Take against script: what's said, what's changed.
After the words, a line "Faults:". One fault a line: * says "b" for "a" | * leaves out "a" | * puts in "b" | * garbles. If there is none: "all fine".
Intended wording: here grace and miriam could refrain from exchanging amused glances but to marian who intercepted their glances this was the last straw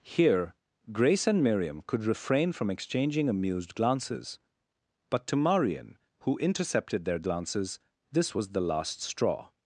here grace and miriam could refrain from exchanging amused glances but to marian who intercepted their glances this was the last straw
Faults:
all fine